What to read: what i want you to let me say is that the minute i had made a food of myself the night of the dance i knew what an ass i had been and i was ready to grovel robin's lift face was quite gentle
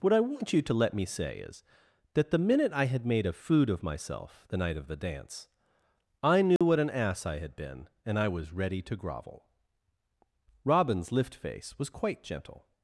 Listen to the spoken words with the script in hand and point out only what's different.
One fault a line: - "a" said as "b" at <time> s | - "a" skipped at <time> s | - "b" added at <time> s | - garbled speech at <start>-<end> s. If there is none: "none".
none